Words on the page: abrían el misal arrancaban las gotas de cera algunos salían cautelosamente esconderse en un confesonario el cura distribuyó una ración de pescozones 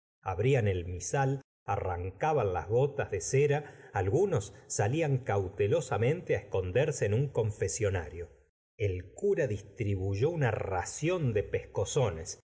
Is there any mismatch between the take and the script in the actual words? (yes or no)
no